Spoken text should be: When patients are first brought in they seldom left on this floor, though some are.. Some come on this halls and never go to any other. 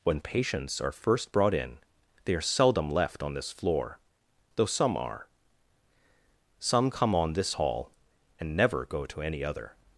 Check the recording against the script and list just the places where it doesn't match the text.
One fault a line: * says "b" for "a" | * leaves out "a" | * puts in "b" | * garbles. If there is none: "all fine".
* puts in "are"
* says "hall" for "halls"